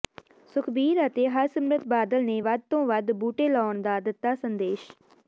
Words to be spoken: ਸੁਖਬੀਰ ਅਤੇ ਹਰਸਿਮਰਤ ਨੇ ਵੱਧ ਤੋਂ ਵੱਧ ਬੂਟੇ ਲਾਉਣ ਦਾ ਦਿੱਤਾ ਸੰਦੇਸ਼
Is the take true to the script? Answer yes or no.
no